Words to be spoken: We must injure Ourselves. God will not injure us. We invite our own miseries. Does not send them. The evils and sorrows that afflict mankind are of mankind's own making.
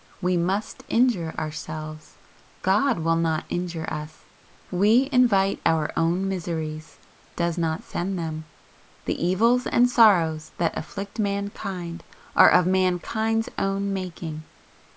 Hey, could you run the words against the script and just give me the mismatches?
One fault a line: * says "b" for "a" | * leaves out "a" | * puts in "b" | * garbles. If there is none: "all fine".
all fine